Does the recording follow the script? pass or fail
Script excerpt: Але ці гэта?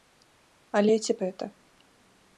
pass